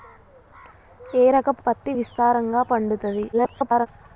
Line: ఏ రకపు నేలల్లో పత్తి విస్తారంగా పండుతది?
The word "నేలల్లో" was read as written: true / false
false